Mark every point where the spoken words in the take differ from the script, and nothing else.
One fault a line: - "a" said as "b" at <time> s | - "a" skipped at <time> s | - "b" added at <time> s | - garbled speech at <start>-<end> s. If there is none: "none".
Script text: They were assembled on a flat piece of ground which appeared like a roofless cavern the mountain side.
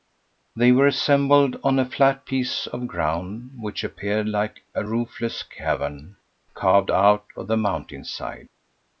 - "carved out of" added at 6.5 s